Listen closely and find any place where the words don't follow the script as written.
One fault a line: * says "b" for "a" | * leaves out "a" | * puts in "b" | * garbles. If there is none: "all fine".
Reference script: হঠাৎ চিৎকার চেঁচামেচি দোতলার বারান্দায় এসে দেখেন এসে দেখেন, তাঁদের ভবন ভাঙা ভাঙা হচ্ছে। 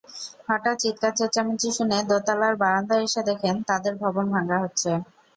* puts in "শুনে"
* leaves out "এসে দেখেন"
* leaves out "ভাঙা"